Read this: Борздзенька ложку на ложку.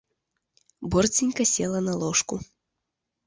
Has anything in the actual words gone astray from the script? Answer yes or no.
yes